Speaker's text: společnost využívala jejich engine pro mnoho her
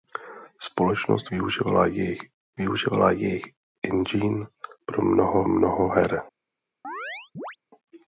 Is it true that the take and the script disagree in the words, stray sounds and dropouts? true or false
true